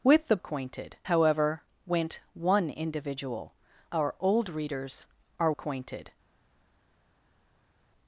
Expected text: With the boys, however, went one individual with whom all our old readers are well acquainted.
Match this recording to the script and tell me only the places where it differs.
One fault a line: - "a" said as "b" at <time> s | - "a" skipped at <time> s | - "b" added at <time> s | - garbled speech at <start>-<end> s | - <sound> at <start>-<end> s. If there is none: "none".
- "boys" said as "acquainted" at 0.4 s
- "with whom all" skipped at 3.5 s
- "well" skipped at 5.5 s